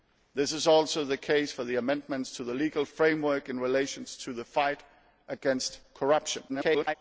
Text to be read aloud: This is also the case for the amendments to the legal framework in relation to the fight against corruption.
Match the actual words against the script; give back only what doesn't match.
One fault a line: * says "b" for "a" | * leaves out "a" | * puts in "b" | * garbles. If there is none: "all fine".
* garbles